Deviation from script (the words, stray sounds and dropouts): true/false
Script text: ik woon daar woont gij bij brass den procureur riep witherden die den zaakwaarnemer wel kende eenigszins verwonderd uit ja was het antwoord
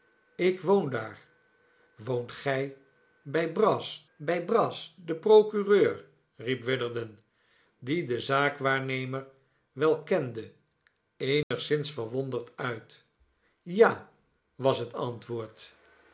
true